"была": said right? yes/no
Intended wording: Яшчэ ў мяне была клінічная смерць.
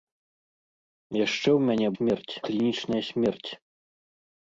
no